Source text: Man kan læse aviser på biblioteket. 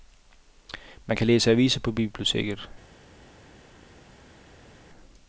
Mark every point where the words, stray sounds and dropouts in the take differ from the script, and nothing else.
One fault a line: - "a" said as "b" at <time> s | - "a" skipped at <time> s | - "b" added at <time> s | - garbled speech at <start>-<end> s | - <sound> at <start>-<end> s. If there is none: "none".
none